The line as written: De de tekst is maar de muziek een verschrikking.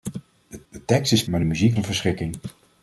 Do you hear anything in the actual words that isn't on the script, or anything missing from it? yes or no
no